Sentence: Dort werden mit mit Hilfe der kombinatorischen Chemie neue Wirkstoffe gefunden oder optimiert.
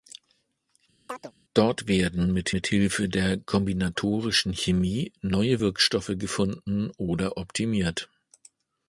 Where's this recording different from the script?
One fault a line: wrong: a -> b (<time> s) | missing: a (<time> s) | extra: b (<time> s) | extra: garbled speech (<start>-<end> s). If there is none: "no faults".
no faults